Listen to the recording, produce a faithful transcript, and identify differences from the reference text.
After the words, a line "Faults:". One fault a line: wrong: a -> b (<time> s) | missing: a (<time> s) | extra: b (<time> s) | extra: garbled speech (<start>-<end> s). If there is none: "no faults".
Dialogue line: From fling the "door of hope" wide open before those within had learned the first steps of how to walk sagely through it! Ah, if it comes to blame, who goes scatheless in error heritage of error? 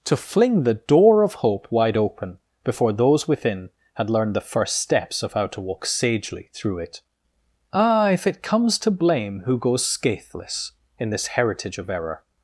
To fling the "door of hope" wide open before those within had learned the first steps of how to walk sagely through it! Ah, if it comes to blame, who goes scatheless in this heritage of error?
Faults:
wrong: From -> To (0.1 s)
wrong: error -> this (11.1 s)